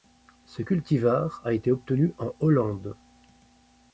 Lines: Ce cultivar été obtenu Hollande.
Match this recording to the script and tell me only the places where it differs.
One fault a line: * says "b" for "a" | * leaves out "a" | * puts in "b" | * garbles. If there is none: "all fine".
* puts in "a"
* puts in "en"